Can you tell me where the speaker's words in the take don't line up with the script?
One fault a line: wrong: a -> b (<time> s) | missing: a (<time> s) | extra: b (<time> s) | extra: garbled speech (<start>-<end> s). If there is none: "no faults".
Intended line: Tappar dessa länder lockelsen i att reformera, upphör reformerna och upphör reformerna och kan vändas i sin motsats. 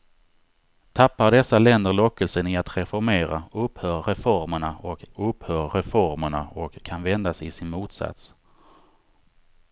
no faults